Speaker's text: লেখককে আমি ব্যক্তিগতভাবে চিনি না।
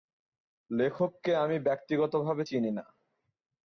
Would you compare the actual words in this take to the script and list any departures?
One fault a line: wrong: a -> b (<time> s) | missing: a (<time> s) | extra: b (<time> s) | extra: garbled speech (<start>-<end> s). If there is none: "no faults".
no faults